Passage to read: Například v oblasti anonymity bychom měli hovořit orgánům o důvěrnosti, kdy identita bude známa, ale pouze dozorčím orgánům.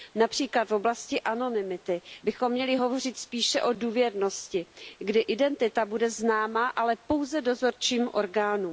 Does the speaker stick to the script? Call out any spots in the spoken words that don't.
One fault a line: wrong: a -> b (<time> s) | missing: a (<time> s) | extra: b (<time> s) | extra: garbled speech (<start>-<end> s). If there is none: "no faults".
wrong: orgánům -> spíše (3.2 s)